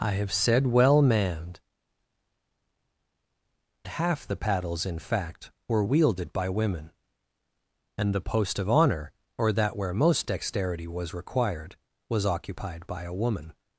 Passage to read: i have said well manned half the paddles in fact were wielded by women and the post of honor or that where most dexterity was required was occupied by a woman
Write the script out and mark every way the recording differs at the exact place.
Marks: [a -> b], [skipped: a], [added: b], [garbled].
i have said well manned half the paddles in fact were wielded by women and the post of honor or that where most dexterity was required was occupied by a woman